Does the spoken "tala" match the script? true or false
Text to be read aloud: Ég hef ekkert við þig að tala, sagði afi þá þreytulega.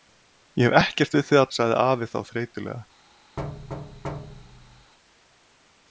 false